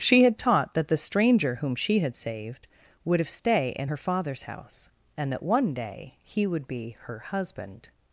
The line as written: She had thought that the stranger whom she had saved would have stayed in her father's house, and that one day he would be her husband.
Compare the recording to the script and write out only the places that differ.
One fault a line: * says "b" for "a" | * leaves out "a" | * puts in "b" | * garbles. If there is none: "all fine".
* says "taught" for "thought"
* says "stay" for "stayed"